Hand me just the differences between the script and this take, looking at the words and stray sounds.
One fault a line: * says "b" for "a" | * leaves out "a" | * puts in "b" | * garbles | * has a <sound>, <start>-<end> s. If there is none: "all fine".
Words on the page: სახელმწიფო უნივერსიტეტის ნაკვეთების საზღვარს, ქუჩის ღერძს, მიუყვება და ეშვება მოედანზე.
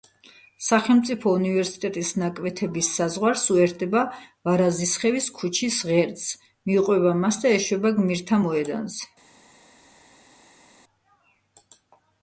* puts in "უერთდება ვარაზისხევის"
* puts in "მას"
* puts in "გმირთა"